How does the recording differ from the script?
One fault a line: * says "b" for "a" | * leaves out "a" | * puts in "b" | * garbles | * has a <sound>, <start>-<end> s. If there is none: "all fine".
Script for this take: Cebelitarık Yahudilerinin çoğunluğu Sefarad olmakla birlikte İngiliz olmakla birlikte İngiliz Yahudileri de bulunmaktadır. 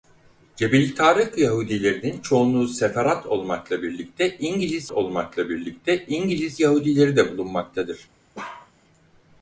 * has a bark, 8.3-8.7 s